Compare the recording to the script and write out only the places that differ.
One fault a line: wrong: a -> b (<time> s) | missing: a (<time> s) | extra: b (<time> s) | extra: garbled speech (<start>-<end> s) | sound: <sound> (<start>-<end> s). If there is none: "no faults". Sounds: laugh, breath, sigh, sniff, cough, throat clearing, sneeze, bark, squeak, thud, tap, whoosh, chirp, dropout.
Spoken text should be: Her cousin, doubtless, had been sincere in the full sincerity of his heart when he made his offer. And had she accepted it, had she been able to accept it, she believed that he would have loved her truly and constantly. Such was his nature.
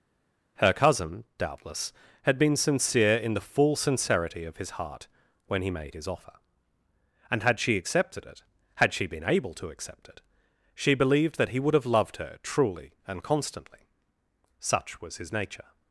no faults